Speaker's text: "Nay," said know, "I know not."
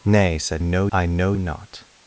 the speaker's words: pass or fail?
pass